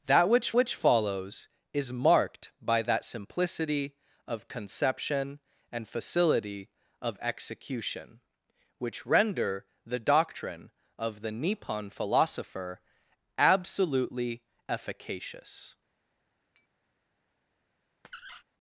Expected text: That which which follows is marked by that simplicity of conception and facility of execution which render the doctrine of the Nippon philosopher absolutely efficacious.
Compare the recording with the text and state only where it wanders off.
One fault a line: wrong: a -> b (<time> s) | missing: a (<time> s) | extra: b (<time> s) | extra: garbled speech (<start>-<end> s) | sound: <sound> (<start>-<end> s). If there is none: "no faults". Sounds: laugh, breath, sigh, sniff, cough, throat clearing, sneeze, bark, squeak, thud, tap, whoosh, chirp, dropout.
sound: tap (16.5-16.7 s)
sound: squeak (18.0-18.4 s)